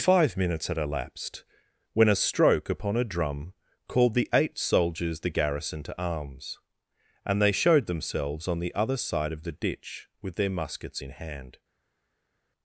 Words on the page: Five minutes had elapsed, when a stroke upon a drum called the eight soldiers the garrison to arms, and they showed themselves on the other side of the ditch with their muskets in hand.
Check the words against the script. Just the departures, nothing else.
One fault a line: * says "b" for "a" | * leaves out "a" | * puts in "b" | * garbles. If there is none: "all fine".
all fine